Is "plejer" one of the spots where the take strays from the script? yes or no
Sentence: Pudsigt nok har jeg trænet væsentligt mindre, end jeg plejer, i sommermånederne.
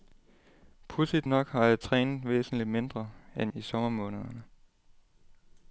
yes